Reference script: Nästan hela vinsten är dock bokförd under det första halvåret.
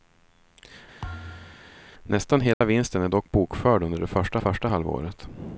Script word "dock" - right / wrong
right